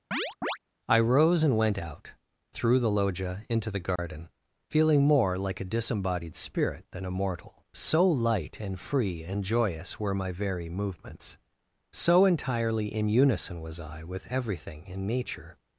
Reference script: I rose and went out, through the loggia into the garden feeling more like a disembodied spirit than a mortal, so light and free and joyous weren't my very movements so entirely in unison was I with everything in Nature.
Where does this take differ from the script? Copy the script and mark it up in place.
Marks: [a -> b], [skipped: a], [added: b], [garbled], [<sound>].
[chirp] I rose and went out, through the loggia into the garden [dropout] feeling more like a disembodied spirit than a mortal, so light and free and joyous [weren't -> were] my very movements so entirely in unison was I with everything in Nature.